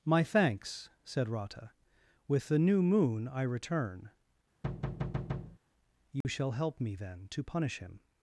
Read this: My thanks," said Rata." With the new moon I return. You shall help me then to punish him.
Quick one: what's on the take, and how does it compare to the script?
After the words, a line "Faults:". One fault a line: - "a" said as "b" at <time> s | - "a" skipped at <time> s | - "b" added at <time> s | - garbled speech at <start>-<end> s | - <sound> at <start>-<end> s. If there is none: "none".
My thanks," said Rata." With the new moon I return. You shall help me then to punish him.
Faults:
- thud at 4.6-5.6 s
- dropout at 6.2-6.2 s